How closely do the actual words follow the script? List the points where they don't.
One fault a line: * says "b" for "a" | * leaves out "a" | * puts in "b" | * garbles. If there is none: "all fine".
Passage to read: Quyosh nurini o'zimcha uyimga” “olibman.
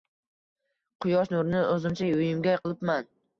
all fine